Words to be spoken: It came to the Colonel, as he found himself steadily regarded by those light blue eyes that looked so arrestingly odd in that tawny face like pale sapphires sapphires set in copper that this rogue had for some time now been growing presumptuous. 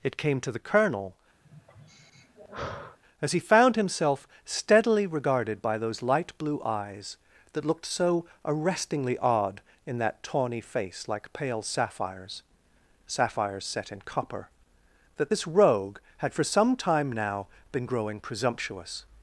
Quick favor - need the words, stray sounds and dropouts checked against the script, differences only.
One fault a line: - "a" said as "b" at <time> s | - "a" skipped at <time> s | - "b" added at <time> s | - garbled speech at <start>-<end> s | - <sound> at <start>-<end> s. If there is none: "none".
- sigh at 1.4-3.0 s